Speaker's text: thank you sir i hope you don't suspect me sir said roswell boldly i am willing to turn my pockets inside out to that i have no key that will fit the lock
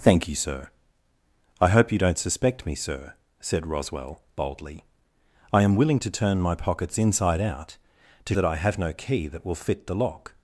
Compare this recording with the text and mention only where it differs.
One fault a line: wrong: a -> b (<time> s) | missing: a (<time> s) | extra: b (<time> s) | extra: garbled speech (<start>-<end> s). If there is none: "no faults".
no faults